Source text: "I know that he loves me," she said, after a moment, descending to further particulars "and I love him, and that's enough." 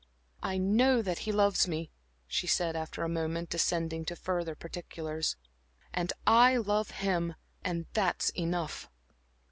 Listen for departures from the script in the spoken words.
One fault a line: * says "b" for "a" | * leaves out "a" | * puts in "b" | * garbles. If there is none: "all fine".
all fine